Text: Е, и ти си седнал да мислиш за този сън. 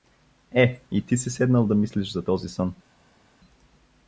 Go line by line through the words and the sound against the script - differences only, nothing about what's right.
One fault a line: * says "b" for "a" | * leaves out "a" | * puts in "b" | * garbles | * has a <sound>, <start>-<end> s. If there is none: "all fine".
all fine